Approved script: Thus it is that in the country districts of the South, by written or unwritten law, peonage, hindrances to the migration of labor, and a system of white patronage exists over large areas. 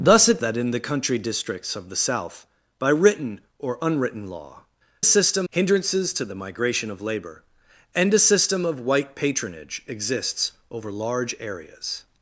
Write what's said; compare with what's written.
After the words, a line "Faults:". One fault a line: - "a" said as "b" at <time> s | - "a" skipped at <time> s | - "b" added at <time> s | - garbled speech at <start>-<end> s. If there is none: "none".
Thus it that in the country districts of the South, by written or unwritten law, system, hindrances to the migration of labor, and a system of white patronage exists over large areas.
Faults:
- "is" skipped at 0.4 s
- "peonage" said as "system" at 5.0 s